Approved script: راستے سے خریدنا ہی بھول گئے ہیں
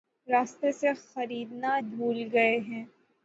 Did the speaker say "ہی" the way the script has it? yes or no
no